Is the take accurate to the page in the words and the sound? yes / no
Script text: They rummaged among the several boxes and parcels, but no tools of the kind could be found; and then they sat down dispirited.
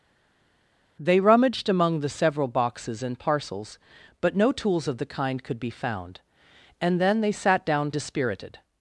yes